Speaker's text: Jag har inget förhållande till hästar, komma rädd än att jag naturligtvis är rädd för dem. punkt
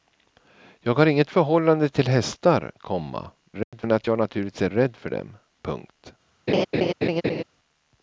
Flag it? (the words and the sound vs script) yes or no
yes